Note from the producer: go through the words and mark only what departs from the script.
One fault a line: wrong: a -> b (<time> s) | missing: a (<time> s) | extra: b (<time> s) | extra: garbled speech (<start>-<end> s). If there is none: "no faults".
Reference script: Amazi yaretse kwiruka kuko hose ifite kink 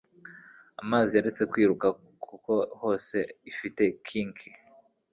no faults